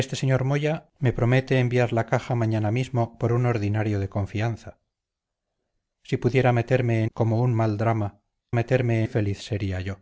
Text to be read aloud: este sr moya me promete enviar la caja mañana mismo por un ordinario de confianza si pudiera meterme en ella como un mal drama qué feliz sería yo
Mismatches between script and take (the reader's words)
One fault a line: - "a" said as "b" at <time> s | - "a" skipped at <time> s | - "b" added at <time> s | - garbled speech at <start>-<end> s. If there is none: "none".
- "ella" skipped at 7.1 s
- "qué" said as "meterme" at 8.5 s